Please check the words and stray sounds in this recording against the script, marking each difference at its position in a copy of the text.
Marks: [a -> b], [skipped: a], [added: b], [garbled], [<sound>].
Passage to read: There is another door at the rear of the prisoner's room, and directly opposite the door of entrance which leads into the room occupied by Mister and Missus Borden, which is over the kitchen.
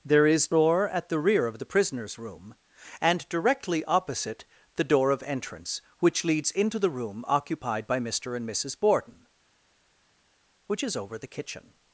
There is [skipped: another] door at the rear of the prisoner's room, and directly opposite the door of entrance which leads into the room occupied by Mister and Missus Borden, which is over the kitchen.